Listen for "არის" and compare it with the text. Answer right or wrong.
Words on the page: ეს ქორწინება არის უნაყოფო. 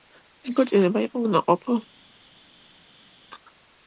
wrong